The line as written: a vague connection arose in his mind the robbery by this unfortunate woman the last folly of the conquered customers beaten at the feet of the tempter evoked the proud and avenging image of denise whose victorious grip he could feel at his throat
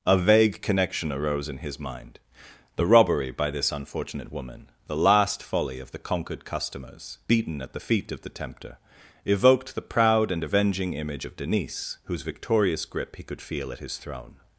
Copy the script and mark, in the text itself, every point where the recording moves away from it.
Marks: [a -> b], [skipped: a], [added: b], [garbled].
a vague connection arose in his mind the robbery by this unfortunate woman the last folly of the conquered customers beaten at the feet of the tempter evoked the proud and avenging image of denise whose victorious grip he could feel at his [throat -> throne]